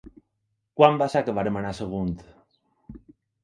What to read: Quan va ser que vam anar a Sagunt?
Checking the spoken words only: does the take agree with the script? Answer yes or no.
yes